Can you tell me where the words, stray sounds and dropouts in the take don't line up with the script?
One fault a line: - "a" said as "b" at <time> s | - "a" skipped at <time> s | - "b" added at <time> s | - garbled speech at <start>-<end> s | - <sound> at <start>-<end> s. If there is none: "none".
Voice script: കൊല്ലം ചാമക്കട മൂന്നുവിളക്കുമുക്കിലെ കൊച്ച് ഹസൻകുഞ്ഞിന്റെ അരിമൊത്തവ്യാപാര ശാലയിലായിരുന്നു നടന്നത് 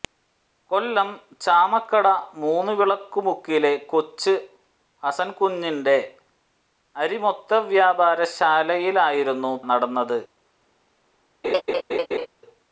- laugh at 11.4-12.3 s